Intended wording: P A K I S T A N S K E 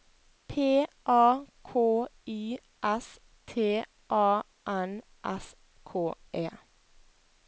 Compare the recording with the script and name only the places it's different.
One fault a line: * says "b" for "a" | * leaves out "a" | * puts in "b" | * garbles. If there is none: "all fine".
all fine